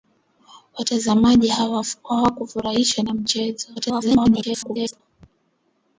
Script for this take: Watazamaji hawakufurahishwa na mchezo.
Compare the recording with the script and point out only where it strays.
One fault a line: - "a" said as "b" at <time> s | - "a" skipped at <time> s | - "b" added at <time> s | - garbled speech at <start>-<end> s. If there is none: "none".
- garbled speech at 3.8-5.0 s